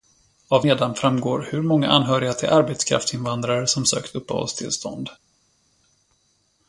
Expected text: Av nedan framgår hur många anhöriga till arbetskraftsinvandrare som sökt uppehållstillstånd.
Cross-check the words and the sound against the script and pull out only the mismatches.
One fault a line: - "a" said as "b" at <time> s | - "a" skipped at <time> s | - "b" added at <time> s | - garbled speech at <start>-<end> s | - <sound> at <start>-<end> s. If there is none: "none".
none